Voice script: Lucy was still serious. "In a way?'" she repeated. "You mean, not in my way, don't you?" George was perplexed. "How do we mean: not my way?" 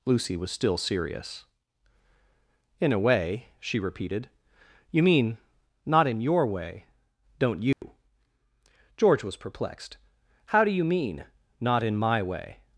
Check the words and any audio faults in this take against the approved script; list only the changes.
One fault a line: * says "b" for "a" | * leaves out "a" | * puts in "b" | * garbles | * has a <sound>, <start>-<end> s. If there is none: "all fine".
* says "your" for "my"
* has a dropout, 7.7-7.8 s
* says "you" for "we"
* puts in "in"